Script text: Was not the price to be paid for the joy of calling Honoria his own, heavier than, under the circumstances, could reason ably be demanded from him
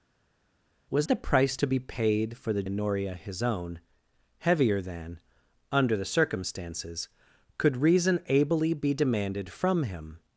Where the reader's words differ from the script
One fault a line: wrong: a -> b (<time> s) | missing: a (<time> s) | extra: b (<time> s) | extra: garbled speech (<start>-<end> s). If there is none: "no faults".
missing: not (1.1 s)
missing: joy of calling (2.6 s)